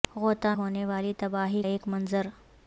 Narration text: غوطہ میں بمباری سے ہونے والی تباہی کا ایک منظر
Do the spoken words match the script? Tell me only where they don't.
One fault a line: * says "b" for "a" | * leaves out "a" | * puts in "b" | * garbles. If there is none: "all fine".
* leaves out "میں بمباری سے"
* leaves out "کا"